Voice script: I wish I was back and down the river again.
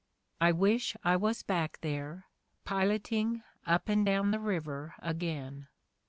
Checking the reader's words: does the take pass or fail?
fail